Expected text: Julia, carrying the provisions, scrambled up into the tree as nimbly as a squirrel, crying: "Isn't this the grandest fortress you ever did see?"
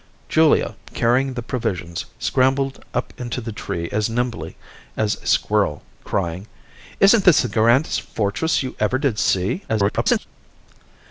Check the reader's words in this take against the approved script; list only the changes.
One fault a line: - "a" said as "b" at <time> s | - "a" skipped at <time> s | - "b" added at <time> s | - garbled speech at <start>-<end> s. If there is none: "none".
- garbled speech at 9.7-10.3 s